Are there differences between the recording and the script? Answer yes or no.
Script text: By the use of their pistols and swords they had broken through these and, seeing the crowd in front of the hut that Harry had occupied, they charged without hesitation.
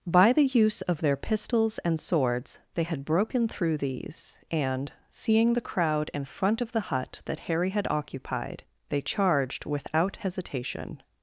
no